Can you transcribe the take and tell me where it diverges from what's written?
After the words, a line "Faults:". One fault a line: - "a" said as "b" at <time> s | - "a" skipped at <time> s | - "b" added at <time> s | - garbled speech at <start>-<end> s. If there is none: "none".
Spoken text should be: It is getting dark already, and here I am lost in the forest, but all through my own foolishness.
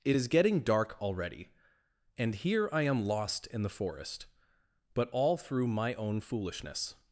It is getting dark already, and here I am lost in the forest, but all through my own foolishness.
Faults:
none